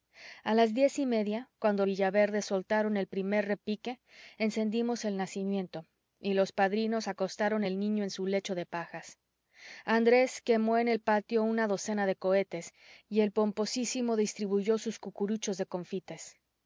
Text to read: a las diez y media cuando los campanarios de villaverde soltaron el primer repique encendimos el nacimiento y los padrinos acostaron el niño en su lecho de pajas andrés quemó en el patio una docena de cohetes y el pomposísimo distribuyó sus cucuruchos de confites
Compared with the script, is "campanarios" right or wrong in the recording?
wrong